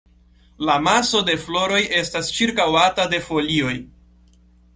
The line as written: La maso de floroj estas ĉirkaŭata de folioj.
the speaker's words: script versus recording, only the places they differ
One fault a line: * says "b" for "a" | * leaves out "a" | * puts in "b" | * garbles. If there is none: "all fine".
all fine